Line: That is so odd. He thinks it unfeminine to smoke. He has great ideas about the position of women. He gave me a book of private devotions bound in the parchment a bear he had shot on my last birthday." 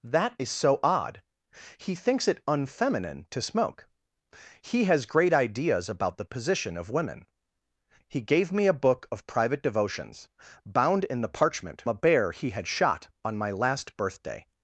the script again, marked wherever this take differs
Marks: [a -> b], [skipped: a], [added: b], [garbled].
That is so odd. He thinks it unfeminine to smoke. He has great ideas about the position of women. He gave me a book of private devotions bound in the parchment a bear he had shot on my last birthday."